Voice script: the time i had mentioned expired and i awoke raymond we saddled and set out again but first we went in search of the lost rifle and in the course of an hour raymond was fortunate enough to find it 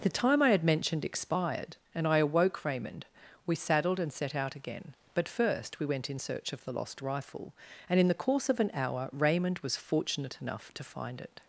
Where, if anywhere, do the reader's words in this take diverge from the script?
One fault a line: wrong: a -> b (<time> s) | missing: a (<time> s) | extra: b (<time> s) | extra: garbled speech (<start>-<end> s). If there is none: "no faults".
no faults